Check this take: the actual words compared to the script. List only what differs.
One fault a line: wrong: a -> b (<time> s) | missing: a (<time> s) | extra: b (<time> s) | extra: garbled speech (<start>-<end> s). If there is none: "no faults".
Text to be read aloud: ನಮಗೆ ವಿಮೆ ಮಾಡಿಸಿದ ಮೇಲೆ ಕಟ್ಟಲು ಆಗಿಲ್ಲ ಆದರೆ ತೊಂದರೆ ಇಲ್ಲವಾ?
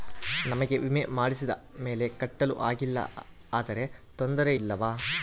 no faults